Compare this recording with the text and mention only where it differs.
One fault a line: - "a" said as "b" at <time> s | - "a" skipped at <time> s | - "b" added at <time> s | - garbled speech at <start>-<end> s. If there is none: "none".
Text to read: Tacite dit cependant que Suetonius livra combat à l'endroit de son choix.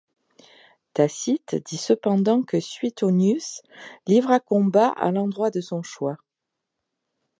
none